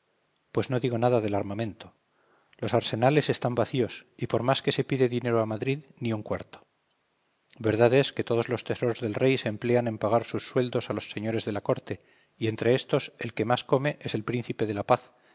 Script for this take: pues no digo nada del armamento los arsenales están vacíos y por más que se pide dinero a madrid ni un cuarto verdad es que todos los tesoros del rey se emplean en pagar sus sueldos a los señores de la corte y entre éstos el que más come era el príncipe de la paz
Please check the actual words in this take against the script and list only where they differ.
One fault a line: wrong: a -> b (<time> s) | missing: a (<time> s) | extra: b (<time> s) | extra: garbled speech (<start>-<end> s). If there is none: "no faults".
wrong: era -> es (14.0 s)